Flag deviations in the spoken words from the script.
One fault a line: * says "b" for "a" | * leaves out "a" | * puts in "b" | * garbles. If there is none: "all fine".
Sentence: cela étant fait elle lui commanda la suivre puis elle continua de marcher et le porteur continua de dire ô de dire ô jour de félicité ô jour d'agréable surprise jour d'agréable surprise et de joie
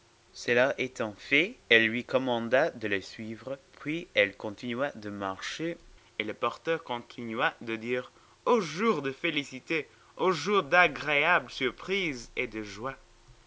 * puts in "de"
* leaves out "de dire ô"
* leaves out "jour d'agréable surprise"